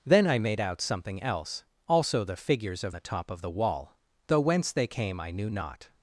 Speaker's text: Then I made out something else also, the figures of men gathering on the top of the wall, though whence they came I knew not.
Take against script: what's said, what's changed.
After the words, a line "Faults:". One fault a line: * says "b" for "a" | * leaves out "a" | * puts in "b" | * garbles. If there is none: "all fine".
Then I made out something else also, the figures of the top of the wall, though whence they came I knew not.
Faults:
* leaves out "men gathering on"